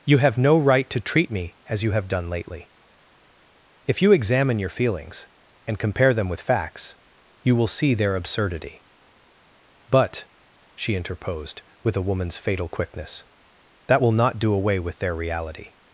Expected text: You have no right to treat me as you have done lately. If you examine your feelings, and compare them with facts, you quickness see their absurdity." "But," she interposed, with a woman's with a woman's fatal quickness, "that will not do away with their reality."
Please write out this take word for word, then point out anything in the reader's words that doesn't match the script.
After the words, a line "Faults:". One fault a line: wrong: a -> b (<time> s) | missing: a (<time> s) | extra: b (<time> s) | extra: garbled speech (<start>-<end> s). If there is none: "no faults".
You have no right to treat me as you have done lately. If you examine your feelings, and compare them with facts, you will see their absurdity." "But," she interposed, with a woman's fatal quickness, "that will not do away with their reality."
Faults:
wrong: quickness -> will (7.5 s)
missing: with a woman's (12.4 s)